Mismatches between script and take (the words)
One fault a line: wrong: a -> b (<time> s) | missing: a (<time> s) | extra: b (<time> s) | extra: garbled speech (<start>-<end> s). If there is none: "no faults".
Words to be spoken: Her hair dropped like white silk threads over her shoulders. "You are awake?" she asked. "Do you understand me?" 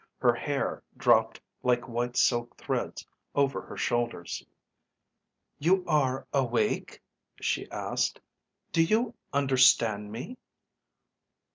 no faults